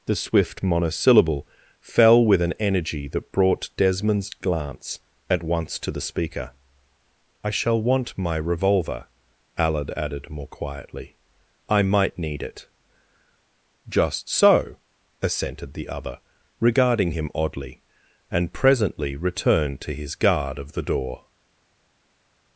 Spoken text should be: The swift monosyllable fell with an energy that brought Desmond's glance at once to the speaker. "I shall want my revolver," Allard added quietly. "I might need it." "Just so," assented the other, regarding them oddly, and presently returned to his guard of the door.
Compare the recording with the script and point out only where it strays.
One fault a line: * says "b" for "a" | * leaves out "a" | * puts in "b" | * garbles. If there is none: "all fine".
* puts in "more"
* says "him" for "them"